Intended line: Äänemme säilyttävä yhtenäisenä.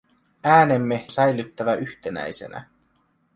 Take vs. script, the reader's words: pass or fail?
pass